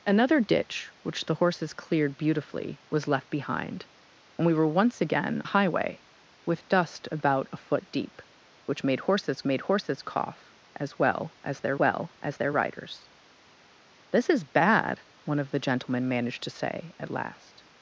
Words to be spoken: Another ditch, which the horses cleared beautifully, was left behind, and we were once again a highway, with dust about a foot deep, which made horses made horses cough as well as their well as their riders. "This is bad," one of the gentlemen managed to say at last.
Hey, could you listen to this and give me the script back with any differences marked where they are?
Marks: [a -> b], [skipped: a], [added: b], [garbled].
Another ditch, which the horses cleared beautifully, was left behind, and we were once again a highway, with dust about a foot deep, which made horses made horses cough as well as their well as their riders. "This is bad," one of the gentlemen managed to say at last.